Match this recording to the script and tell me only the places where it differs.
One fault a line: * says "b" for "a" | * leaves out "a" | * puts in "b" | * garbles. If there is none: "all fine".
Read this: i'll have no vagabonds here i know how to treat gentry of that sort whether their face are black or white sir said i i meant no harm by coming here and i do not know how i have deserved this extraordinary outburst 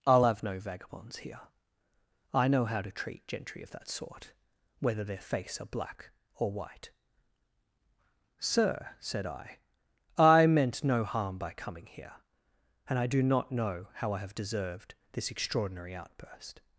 all fine